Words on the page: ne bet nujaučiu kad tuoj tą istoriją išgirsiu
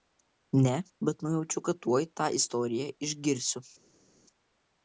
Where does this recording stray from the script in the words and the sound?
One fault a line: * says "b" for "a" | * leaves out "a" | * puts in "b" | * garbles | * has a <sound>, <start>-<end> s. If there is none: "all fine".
all fine